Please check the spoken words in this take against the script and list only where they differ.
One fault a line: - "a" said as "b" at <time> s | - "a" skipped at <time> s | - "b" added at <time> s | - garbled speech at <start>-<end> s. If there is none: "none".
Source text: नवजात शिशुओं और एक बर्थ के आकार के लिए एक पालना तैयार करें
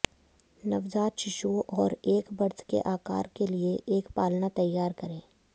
none